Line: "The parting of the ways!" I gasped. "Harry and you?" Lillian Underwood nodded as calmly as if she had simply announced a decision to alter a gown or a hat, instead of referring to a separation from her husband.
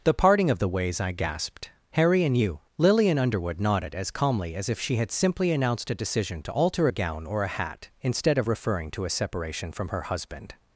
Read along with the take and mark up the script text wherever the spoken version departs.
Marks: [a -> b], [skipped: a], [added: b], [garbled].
"The parting of the ways!" I gasped. "Harry and you?" Lillian Underwood nodded as calmly as if she had simply announced a decision to alter a gown or a hat, instead of referring to a separation from her husband.